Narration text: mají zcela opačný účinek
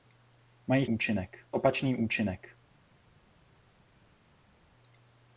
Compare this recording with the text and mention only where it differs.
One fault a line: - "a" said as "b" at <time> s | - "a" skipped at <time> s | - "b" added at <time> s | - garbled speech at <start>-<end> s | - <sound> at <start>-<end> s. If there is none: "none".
- "zcela" said as "účinek" at 0.8 s